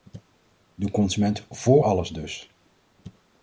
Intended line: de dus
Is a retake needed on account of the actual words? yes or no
yes